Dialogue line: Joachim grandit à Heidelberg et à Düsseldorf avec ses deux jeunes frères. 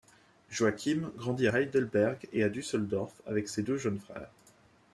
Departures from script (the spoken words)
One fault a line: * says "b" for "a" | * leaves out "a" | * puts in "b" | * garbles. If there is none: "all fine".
* leaves out "à"